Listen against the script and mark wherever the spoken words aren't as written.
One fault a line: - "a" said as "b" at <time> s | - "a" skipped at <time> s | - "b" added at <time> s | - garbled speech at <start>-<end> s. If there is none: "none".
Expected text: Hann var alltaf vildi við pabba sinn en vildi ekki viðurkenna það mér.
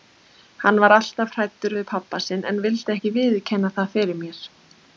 - "vildi" said as "hræddur" at 1.4 s
- "fyrir" added at 4.0 s